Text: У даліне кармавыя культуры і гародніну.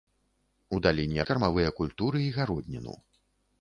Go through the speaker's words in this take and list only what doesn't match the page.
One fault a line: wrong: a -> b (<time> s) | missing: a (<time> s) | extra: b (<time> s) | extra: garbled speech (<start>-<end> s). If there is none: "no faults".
no faults